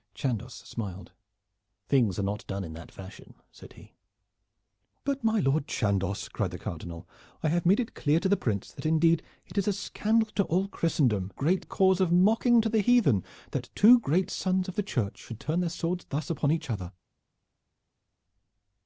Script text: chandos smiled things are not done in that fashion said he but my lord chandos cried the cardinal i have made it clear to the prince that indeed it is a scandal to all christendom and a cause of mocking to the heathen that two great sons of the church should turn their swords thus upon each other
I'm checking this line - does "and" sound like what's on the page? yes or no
no